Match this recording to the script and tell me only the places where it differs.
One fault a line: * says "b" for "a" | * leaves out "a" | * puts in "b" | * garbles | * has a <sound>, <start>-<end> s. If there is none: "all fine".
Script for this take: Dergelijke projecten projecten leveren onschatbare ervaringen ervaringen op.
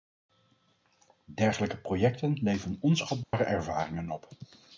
* leaves out "projecten"
* has a dropout, 3.2-3.3 s
* leaves out "ervaringen"